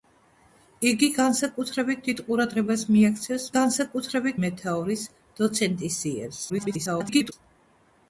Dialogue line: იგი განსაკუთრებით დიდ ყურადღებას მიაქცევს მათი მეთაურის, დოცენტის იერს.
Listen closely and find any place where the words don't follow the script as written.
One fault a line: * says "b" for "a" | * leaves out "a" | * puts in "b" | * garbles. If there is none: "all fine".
* says "განსაკუთრებით" for "მათი"
* garbles